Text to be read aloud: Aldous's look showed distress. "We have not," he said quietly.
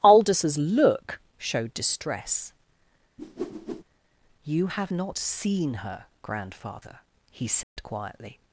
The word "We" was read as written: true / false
false